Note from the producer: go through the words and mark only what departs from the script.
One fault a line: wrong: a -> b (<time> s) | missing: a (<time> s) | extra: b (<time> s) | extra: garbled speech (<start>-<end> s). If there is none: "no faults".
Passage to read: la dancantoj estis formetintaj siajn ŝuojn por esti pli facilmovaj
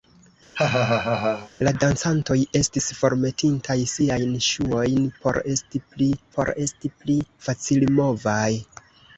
extra: por esti pli (6.4 s)